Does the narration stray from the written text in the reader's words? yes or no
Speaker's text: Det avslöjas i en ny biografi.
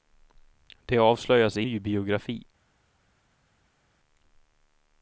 yes